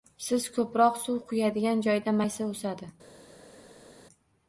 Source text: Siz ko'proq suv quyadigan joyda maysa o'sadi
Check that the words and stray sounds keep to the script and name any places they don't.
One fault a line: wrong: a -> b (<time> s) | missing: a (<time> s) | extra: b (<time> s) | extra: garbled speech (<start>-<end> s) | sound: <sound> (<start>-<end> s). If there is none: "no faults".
no faults